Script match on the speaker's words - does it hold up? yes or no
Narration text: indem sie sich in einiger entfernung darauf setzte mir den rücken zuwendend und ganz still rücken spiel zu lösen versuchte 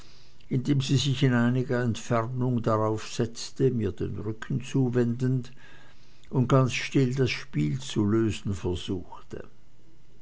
no